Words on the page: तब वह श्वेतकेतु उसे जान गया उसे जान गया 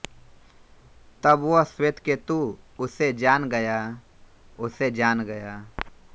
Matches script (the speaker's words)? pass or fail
pass